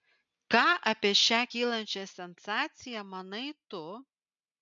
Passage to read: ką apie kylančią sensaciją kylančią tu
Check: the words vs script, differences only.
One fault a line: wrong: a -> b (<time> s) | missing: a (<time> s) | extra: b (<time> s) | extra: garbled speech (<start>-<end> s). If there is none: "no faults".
extra: šią (1.2 s)
wrong: kylančią -> manai (3.1 s)